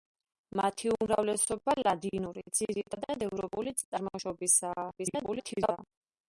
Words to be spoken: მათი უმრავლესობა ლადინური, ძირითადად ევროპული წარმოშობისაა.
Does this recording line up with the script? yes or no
no